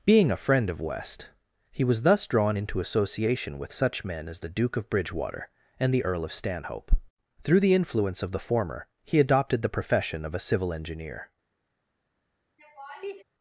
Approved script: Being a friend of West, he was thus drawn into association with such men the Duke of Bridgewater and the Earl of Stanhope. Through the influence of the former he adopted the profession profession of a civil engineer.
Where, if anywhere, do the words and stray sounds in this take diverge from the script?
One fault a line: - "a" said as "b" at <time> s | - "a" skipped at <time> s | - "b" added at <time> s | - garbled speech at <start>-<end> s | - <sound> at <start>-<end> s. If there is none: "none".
- "as" added at 4.3 s
- "profession" skipped at 10.2 s
- laugh at 12.6-13.2 s